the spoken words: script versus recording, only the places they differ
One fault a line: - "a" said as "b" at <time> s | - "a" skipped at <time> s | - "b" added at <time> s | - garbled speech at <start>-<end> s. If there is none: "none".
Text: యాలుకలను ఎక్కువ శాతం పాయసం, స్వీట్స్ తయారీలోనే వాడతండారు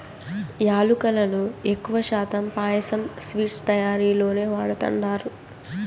none